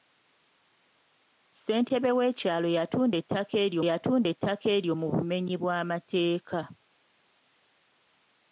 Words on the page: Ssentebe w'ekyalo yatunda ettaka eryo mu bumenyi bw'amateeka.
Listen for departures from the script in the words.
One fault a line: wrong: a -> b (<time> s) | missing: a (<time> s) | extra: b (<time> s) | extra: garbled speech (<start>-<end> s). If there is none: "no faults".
extra: yatunda ettaka eryo (3.9 s)